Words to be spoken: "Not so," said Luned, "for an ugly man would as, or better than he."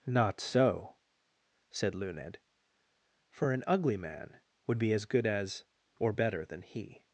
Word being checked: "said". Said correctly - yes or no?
yes